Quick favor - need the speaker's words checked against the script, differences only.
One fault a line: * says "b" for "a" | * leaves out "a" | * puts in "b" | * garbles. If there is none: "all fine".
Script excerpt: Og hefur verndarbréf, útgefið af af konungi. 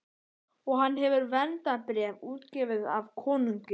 * puts in "hann"
* leaves out "af"